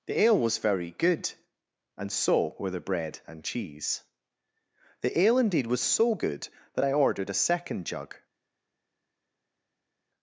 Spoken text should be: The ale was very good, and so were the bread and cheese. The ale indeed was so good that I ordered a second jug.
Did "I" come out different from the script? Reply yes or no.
no